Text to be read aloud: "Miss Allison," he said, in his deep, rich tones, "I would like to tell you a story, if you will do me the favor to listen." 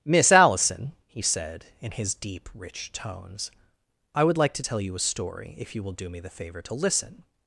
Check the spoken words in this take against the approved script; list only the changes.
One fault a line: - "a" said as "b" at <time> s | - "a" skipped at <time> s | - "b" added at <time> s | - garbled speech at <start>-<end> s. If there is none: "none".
none